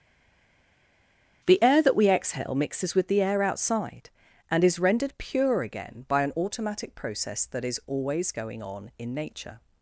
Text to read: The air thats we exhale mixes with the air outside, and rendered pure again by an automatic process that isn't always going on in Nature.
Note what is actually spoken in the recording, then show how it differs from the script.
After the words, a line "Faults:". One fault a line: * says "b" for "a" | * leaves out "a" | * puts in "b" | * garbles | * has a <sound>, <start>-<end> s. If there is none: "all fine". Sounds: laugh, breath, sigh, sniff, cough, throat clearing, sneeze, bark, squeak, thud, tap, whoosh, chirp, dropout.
The air that we exhale mixes with the air outside, and is rendered pure again by an automatic process that is always going on in Nature.
Faults:
* says "that" for "thats"
* puts in "is"
* says "is" for "isn't"